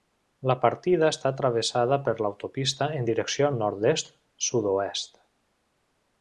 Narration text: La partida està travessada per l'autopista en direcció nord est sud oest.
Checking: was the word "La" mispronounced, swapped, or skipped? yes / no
no